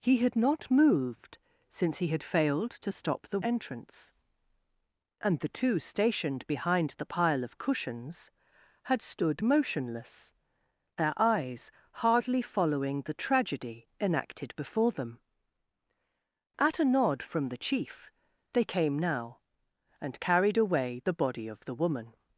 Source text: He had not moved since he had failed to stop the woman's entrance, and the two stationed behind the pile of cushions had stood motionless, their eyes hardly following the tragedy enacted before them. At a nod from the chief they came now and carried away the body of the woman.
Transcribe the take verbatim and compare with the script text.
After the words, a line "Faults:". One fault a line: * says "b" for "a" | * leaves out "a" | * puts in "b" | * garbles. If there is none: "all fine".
He had not moved since he had failed to stop the entrance, and the two stationed behind the pile of cushions had stood motionless, their eyes hardly following the tragedy enacted before them. At a nod from the chief they came now and carried away the body of the woman.
Faults:
* leaves out "woman's"